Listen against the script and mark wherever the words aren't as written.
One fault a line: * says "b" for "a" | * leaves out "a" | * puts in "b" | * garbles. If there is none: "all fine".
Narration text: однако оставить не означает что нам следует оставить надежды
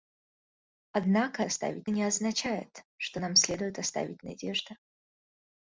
all fine